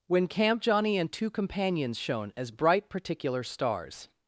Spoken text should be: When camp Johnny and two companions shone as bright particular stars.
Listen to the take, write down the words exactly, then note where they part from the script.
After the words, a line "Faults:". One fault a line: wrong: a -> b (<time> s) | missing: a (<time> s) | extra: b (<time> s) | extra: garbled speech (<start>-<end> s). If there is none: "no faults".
When camp Johnny and two companions shone as bright particular stars.
Faults:
no faults